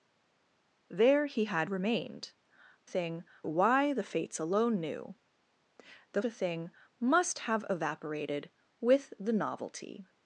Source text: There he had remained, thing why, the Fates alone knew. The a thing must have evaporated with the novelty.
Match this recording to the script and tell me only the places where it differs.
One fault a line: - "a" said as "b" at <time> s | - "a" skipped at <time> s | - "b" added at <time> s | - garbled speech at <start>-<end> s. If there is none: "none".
none